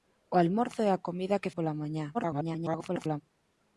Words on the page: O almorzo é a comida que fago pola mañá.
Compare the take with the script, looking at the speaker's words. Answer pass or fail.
fail